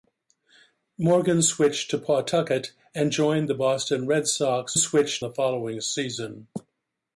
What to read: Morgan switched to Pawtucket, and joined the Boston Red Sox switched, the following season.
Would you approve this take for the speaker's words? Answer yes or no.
yes